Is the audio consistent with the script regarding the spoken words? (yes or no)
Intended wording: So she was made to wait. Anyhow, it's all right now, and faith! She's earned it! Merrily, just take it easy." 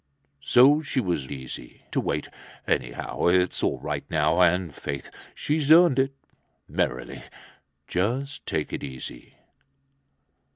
no